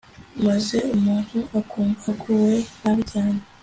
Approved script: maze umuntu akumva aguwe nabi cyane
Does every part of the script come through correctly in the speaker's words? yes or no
yes